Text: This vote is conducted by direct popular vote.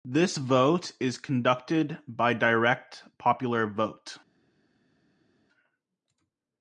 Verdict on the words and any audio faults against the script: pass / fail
pass